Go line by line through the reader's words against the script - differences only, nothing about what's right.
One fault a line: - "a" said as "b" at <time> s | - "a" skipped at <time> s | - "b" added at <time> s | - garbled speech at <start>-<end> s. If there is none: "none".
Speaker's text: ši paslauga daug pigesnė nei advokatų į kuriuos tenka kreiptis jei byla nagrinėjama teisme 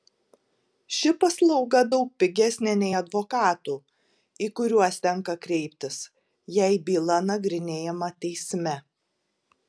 none